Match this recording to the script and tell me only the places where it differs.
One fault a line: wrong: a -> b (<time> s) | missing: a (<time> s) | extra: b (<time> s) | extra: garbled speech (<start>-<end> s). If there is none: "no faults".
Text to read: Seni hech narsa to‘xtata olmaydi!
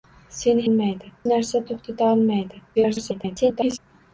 wrong: hech -> olmaydi (0.7 s)
extra: garbled speech (2.7-3.8 s)